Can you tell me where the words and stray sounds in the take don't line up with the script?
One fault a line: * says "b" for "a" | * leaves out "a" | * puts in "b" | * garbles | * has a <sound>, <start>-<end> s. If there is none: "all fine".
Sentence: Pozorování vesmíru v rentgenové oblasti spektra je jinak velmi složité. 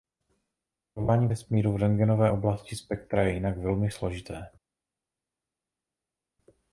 all fine